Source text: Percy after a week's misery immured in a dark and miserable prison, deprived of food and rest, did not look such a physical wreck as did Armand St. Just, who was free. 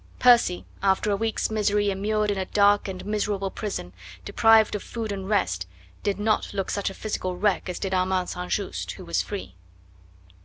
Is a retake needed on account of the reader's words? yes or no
no